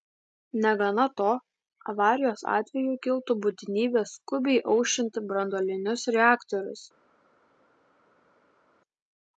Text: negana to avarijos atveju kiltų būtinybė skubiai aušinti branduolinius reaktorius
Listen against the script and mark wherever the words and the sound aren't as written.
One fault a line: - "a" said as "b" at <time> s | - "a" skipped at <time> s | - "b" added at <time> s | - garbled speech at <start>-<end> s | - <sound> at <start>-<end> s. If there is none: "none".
none